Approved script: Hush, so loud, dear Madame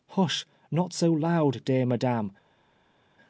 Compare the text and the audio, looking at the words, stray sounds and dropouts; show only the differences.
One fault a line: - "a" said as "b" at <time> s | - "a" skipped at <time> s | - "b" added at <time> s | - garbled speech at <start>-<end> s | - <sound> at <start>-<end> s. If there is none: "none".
- "not" added at 0.7 s